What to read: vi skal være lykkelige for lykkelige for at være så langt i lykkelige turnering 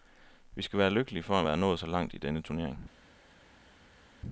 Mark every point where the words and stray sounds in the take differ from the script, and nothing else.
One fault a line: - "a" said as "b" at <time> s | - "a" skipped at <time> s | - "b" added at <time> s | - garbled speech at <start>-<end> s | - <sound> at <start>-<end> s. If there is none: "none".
- "lykkelige for" skipped at 1.4 s
- "nået" added at 1.6 s
- "lykkelige" said as "denne" at 2.2 s